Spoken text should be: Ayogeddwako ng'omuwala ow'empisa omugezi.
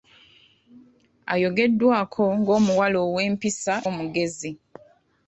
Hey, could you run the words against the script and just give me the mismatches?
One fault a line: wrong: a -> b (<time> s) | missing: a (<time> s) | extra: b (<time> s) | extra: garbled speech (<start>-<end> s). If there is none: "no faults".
no faults